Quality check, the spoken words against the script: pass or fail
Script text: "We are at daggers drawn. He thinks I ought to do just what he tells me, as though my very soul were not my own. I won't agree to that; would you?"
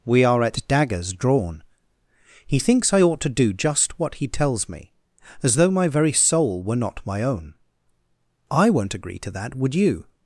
pass